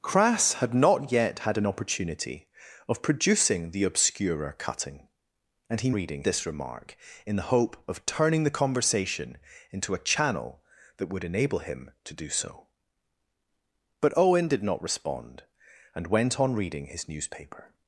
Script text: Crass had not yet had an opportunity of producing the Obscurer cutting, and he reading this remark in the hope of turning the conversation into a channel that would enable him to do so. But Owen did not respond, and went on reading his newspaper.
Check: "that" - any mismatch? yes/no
no